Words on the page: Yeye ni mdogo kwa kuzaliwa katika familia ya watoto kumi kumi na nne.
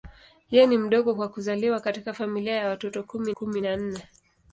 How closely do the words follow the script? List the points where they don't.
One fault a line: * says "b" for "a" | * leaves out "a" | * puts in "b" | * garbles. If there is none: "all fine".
all fine